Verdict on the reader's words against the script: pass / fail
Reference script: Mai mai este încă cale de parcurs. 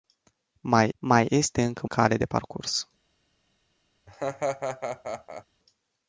pass